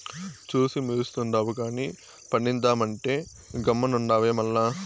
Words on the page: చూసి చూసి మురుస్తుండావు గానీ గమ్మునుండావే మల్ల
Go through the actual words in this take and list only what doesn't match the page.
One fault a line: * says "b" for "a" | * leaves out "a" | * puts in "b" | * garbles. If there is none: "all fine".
* leaves out "చూసి"
* puts in "పండిద్దామంటే"